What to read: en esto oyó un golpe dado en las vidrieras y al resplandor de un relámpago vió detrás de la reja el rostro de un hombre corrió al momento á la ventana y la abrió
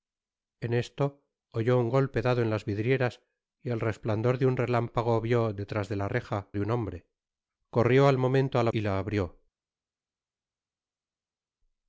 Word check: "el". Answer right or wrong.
wrong